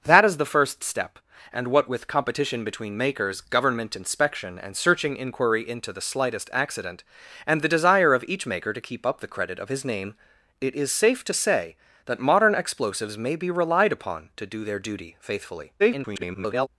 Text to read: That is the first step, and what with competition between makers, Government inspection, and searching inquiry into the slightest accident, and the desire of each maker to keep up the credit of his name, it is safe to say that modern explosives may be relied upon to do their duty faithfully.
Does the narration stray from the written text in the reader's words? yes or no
yes